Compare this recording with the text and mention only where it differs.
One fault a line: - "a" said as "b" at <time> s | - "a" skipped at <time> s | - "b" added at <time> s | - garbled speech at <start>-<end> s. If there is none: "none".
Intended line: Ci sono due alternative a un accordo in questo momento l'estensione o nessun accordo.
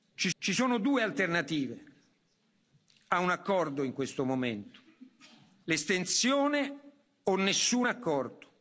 - "ci" added at 0.4 s